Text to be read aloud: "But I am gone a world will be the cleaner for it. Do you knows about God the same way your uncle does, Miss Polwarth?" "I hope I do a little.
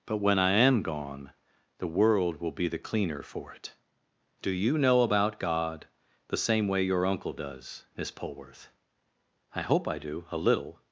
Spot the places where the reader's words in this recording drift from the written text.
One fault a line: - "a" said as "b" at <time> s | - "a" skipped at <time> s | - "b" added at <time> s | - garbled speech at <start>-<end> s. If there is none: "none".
- "when" added at 0.2 s
- "a" said as "the" at 1.8 s
- "knows" said as "know" at 4.8 s